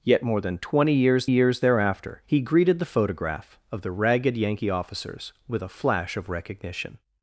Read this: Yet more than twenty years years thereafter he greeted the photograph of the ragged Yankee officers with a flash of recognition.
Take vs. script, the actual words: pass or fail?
pass